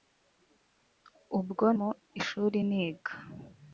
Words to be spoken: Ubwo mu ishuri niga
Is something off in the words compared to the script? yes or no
no